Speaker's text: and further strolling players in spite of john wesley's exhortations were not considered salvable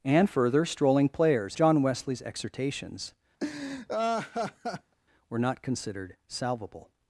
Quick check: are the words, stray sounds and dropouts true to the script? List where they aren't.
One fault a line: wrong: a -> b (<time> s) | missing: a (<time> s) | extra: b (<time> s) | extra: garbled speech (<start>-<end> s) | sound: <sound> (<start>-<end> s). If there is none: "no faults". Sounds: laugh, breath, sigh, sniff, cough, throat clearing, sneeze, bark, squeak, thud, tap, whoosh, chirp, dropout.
missing: in spite of (1.6 s)
sound: laugh (3.4-4.9 s)